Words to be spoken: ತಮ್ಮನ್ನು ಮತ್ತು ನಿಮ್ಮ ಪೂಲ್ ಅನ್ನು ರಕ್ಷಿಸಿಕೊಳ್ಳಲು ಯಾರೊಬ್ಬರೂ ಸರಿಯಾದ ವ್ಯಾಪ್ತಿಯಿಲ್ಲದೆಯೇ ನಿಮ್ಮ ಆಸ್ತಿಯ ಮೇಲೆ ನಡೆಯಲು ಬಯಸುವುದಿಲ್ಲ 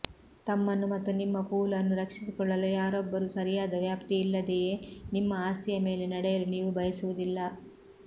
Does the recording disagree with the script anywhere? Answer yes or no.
yes